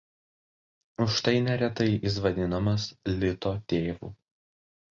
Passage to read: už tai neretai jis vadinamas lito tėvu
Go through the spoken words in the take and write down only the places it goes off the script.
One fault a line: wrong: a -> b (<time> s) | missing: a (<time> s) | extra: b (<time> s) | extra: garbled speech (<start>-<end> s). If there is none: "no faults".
no faults